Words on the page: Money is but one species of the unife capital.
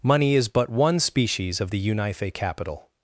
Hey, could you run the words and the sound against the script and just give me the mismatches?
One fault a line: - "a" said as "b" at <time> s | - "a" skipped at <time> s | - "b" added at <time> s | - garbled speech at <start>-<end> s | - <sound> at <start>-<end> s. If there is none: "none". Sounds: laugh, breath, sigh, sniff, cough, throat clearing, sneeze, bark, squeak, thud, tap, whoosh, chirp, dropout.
none